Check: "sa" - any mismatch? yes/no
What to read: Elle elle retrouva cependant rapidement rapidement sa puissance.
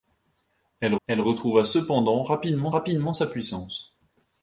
no